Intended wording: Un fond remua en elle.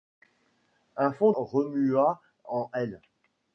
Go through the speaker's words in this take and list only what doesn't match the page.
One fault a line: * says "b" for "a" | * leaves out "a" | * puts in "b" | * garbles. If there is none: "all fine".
all fine